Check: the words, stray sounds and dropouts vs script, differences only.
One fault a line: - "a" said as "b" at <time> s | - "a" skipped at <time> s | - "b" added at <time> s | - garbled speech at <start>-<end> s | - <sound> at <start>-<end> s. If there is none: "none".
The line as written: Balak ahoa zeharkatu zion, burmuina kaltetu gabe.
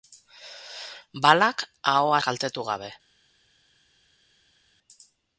- "zeharkatu zion burmuina" skipped at 2.2 s